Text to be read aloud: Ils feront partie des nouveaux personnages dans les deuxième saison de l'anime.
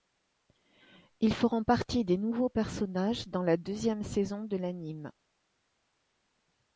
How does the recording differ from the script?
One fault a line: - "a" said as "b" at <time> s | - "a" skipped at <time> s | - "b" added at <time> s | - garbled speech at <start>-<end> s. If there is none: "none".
- "les" said as "la" at 3.4 s